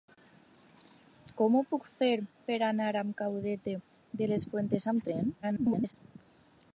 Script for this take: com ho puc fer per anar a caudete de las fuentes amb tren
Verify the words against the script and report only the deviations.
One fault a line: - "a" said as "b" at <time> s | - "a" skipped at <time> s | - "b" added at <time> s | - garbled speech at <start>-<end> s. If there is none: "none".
- garbled speech at 5.4-5.9 s